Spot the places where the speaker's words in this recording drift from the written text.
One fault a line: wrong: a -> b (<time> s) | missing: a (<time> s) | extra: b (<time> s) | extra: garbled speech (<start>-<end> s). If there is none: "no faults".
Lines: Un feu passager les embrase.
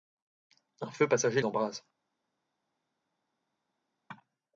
missing: les (1.4 s)